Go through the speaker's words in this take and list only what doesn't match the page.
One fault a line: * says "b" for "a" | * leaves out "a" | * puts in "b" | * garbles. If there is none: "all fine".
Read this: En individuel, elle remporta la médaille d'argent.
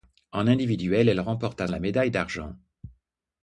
all fine